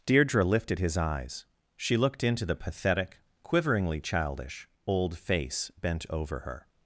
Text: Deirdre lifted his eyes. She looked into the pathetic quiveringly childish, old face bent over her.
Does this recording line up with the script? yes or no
yes